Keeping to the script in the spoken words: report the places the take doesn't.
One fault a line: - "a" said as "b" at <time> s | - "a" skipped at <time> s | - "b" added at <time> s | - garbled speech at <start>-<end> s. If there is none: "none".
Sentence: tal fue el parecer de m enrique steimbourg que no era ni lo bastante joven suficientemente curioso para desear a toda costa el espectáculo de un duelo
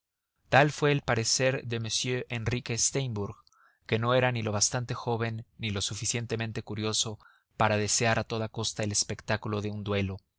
- "ni lo" added at 5.6 s